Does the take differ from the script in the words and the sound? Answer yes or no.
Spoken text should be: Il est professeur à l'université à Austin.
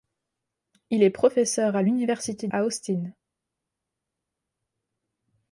no